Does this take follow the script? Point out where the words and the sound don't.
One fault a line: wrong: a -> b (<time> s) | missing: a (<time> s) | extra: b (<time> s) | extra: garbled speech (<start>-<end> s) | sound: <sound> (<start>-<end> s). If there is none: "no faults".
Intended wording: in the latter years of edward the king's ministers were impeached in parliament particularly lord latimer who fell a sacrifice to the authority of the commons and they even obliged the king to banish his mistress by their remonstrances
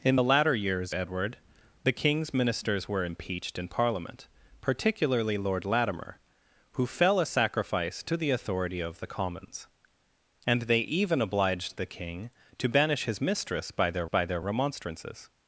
missing: of (0.9 s)
extra: by their (14.1 s)